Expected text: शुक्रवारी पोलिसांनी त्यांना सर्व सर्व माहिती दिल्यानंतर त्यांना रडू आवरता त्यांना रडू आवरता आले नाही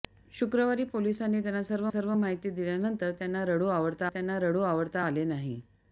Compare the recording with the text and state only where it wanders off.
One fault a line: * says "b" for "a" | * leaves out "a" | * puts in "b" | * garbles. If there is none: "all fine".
all fine